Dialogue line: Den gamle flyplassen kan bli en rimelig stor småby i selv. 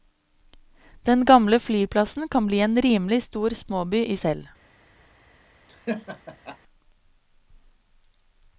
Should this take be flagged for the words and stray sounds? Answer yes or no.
yes